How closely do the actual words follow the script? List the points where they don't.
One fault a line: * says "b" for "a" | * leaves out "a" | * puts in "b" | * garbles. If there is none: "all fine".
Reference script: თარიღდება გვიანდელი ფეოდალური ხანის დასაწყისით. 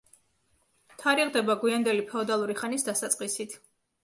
all fine